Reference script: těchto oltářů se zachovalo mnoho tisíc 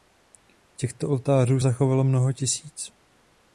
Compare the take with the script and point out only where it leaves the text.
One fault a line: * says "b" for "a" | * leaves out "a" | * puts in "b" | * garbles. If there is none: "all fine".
* leaves out "se"